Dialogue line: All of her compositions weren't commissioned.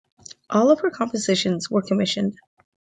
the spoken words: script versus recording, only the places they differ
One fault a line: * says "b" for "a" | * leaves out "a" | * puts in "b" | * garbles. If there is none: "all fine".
* says "were" for "weren't"